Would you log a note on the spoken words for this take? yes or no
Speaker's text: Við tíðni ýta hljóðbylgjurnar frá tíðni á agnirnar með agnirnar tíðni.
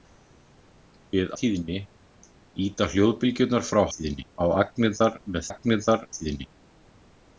no